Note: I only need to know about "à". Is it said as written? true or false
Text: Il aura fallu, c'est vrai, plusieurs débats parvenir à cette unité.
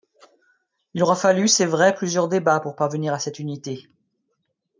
true